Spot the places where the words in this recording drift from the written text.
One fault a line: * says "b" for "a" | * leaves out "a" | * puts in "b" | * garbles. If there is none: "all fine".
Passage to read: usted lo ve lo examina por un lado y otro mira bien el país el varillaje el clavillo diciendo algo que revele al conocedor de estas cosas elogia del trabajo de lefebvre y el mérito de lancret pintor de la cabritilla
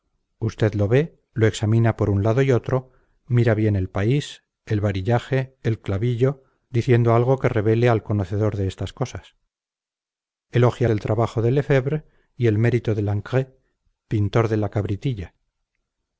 all fine